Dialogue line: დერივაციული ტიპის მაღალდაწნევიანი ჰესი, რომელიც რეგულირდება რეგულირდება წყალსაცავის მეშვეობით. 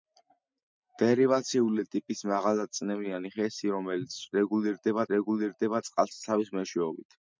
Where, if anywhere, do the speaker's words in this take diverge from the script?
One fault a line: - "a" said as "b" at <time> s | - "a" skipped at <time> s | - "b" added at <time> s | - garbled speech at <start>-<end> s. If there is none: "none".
none